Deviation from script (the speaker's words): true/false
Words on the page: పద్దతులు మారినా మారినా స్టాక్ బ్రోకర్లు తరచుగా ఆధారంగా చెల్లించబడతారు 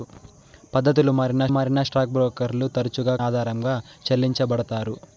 false